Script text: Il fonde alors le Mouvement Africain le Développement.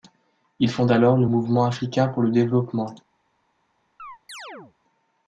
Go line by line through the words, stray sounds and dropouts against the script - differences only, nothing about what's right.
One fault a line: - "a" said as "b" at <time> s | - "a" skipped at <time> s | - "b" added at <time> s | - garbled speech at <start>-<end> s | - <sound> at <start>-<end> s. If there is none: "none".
- "pour" added at 2.1 s
- chirp at 4.0-4.7 s